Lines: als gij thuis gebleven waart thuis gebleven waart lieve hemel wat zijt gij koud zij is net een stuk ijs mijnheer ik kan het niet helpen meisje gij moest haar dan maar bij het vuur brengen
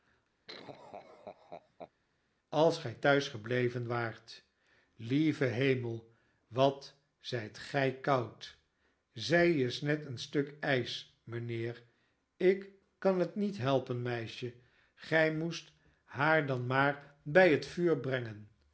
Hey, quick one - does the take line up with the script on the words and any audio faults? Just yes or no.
no